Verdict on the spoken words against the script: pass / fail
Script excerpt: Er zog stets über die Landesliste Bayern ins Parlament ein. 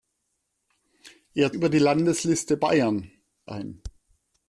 fail